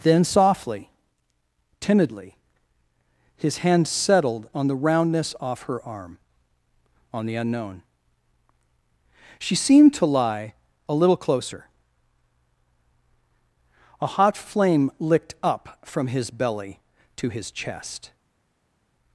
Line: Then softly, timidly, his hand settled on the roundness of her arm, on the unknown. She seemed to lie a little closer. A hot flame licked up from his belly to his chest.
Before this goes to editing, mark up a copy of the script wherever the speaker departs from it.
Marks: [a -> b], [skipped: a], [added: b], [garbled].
Then softly, timidly, his hand settled on the roundness [of -> off] her arm, on the unknown. She seemed to lie a little closer. A hot flame licked up from his belly to his chest.